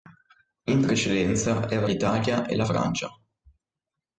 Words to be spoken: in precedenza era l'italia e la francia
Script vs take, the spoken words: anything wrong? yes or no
no